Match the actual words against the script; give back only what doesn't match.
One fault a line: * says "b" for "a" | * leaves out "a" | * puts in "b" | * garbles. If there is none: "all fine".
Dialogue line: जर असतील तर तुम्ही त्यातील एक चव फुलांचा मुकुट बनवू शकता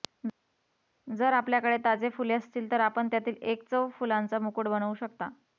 * puts in "आपल्याकडे ताजे फुले"
* says "आपण" for "तुम्ही"